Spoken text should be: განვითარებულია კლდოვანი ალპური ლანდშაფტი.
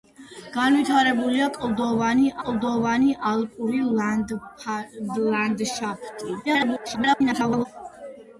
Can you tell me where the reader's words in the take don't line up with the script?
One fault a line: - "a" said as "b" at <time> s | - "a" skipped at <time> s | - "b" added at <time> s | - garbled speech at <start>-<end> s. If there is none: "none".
- "კლდოვანი" added at 2.4 s
- garbled speech at 6.4-7.7 s